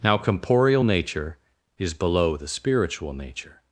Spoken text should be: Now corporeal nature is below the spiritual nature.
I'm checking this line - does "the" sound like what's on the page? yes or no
yes